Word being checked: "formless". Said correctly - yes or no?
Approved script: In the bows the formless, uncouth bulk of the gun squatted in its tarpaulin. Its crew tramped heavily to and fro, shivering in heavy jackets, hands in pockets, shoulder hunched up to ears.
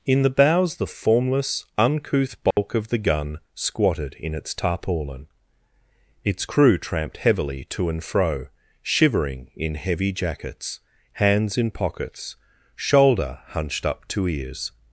yes